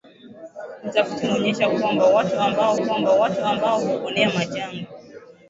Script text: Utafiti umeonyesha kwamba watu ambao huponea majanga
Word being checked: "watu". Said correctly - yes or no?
yes